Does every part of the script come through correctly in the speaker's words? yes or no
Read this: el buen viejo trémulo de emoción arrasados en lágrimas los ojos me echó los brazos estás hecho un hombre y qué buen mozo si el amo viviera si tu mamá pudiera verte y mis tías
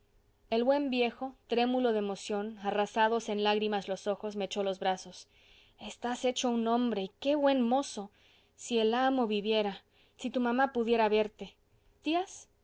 no